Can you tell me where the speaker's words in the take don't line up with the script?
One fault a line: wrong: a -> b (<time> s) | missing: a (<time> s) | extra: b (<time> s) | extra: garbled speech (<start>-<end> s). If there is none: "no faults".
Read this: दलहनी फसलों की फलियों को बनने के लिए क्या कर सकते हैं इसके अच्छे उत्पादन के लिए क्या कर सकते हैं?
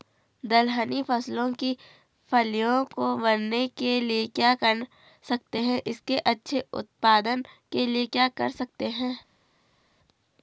no faults